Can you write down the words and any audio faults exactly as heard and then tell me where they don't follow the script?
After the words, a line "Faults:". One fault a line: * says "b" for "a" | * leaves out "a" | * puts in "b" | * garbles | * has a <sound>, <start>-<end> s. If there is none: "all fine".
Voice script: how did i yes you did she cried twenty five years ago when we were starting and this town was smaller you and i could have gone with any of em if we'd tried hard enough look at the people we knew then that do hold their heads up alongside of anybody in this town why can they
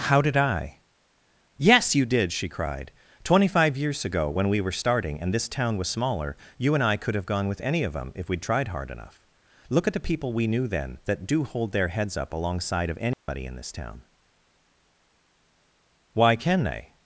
how did i yes you did she cried twenty five years ago when we were starting and this town was smaller you and i could have gone with any of them if we'd tried hard enough look at the people we knew then that do hold their heads up alongside of anybody in this town why can they
Faults:
* says "them" for "em"
* has a dropout, 13.1-13.3 s